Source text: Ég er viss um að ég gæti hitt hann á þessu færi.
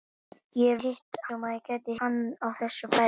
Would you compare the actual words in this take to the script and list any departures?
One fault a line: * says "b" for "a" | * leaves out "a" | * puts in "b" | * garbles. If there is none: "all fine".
* says "hitt" for "viss"
* leaves out "hitt"